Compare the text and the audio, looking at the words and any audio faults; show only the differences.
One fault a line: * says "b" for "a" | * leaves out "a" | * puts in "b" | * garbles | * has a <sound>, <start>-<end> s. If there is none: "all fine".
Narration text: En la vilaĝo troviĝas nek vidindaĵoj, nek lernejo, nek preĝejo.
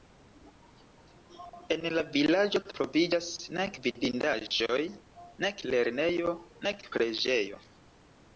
* has a dropout, 4.5-4.5 s